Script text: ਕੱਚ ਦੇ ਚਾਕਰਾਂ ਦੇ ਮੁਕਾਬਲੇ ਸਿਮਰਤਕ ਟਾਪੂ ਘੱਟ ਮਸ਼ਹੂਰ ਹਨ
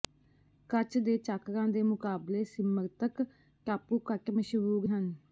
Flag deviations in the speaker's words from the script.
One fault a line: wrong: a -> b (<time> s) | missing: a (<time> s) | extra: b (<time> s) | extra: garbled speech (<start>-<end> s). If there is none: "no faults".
no faults